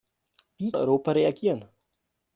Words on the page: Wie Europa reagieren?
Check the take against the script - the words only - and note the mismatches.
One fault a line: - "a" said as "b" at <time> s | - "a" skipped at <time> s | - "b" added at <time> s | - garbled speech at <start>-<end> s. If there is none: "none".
none